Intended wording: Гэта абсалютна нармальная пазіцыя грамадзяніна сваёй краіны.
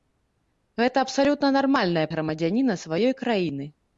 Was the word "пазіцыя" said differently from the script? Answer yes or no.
yes